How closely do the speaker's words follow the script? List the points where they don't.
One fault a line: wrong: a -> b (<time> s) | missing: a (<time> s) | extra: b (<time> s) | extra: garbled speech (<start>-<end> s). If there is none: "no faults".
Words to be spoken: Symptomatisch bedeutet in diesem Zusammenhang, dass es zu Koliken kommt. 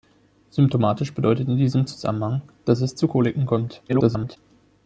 extra: garbled speech (3.9-4.4 s)